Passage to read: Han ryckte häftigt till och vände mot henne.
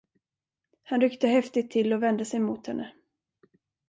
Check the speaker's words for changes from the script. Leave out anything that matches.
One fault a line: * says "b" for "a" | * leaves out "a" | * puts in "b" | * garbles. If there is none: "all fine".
* puts in "sig"